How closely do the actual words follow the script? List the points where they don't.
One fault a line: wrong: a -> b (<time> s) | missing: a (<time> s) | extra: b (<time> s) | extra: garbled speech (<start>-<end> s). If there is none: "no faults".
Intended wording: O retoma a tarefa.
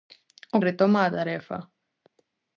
no faults